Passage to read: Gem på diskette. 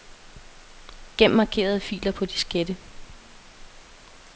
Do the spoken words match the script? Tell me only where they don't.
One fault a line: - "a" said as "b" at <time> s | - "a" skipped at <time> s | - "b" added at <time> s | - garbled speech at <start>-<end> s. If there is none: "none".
- "markerede filer" added at 1.3 s